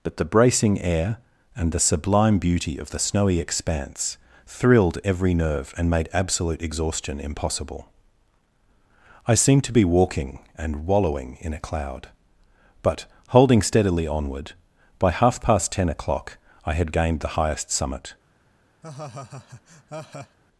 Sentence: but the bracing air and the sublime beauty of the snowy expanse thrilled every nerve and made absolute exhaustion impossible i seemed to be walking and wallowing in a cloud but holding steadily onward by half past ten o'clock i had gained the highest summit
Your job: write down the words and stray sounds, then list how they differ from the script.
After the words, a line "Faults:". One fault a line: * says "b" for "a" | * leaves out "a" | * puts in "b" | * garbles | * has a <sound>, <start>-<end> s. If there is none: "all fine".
but the bracing air and the sublime beauty of the snowy expanse thrilled every nerve and made absolute exhaustion impossible i seemed to be walking and wallowing in a cloud but holding steadily onward by half past ten o'clock i had gained the highest summit
Faults:
* has a laugh, 18.8-20.4 s